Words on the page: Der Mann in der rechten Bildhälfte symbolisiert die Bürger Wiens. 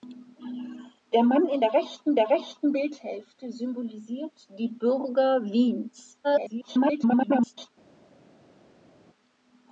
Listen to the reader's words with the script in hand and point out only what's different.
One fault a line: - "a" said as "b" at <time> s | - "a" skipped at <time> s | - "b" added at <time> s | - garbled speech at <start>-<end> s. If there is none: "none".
- "der rechten" added at 2.1 s
- garbled speech at 6.2-7.7 s